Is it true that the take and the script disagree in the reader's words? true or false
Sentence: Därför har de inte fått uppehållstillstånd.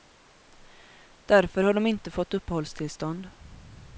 false